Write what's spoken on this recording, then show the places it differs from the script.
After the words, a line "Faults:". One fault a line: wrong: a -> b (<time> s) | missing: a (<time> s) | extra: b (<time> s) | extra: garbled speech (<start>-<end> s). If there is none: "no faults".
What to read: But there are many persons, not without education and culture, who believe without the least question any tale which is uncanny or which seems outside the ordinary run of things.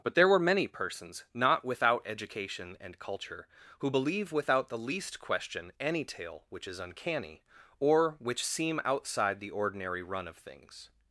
But there were many persons, not without education and culture, who believe without the least question any tale which is uncanny or which seem outside the ordinary run of things.
Faults:
wrong: are -> were (0.3 s)
wrong: seems -> seem (8.4 s)